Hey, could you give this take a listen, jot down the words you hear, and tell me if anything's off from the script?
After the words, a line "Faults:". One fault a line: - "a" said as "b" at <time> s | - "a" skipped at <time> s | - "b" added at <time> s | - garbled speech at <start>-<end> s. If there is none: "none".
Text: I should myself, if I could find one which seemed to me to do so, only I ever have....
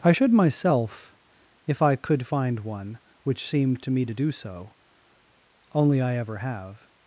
I should myself, if I could find one which seemed to me to do so, only I ever have....
Faults:
none